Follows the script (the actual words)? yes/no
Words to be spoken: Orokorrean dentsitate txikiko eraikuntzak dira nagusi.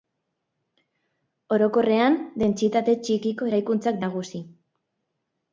no